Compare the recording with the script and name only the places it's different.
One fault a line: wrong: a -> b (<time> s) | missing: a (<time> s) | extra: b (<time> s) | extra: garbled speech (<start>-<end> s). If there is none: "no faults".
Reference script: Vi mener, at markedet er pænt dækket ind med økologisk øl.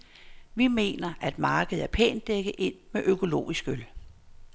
no faults